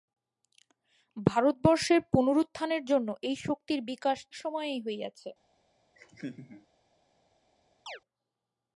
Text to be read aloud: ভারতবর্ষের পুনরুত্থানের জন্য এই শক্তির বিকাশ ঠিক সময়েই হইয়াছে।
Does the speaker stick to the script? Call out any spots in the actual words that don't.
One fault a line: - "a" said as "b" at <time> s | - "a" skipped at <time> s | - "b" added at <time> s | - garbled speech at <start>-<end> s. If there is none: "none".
- "ঠিক" skipped at 4.2 s